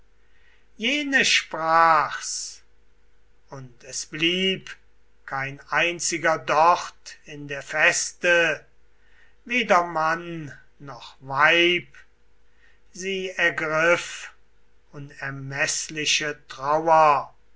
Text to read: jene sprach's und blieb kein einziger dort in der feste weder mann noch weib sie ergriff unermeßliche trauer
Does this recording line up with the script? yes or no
no